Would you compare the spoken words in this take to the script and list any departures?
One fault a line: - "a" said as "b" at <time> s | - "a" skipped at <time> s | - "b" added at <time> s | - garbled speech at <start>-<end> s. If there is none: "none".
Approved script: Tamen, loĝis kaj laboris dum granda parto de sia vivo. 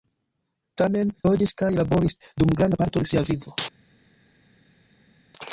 none